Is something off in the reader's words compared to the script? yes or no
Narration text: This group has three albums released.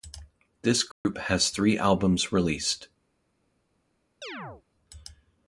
no